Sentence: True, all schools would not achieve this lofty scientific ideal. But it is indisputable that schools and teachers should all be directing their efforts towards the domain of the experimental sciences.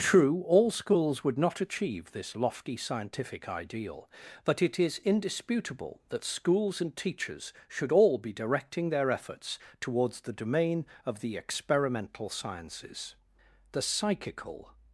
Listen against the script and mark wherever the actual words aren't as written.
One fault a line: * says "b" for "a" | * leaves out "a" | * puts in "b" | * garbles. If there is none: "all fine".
* puts in "The psychical"